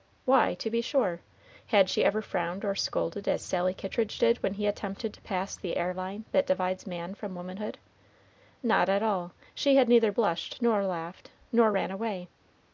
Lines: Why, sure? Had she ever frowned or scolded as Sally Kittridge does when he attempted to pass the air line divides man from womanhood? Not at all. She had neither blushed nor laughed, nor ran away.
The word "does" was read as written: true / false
false